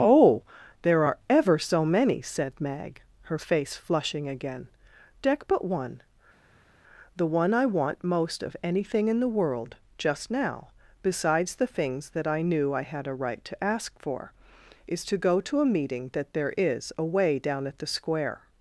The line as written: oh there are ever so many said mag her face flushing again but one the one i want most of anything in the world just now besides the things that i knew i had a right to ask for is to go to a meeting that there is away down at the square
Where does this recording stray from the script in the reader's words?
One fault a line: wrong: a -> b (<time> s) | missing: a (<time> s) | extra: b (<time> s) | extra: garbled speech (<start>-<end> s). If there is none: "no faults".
extra: deck (5.2 s)